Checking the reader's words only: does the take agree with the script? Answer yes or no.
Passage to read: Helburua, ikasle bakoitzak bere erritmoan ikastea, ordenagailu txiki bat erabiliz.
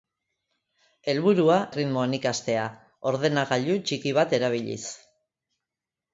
no